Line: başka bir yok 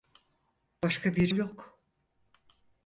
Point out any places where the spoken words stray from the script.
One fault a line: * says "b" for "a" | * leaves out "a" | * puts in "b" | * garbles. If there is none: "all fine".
all fine